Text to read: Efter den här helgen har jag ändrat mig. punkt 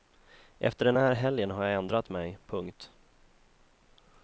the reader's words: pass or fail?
pass